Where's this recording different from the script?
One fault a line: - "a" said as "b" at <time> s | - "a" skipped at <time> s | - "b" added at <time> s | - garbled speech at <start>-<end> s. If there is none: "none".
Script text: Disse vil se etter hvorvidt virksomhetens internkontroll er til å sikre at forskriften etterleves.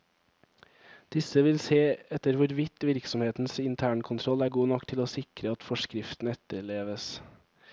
- "god nok" added at 4.5 s